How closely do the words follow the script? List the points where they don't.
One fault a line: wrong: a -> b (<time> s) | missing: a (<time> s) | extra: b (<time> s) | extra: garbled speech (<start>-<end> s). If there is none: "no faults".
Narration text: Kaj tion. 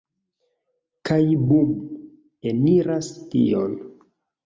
extra: bum Eniras (1.5 s)